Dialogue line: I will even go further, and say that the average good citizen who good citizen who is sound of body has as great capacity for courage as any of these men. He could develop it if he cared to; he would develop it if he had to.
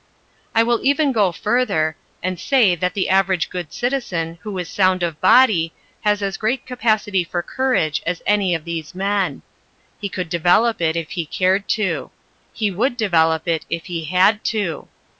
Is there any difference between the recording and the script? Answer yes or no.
yes